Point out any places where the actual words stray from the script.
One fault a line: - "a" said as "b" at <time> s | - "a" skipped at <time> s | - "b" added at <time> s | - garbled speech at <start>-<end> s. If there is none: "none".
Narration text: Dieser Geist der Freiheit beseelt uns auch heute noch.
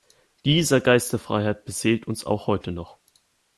none